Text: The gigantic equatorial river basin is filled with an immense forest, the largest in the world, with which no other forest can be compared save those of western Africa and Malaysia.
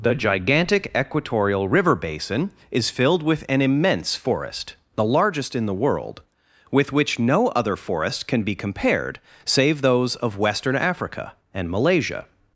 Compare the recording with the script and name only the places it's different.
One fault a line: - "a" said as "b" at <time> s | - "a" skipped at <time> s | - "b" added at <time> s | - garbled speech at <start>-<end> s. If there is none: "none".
none